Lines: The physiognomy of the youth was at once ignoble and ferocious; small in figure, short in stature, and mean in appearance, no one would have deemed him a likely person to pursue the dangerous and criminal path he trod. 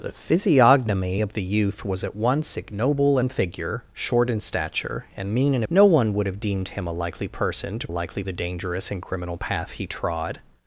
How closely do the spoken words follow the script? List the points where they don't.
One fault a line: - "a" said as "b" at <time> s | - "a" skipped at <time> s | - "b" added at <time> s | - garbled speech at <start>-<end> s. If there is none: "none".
- "and ferocious small" skipped at 3.2 s
- "appearance" skipped at 5.6 s
- "pursue" said as "likely" at 7.9 s